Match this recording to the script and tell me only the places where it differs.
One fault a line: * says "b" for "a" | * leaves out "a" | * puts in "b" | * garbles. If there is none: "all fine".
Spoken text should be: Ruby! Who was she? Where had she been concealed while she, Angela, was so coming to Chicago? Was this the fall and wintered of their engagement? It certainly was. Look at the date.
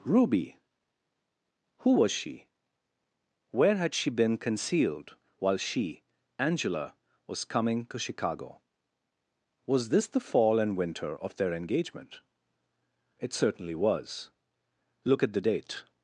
* leaves out "so"
* says "winter" for "wintered"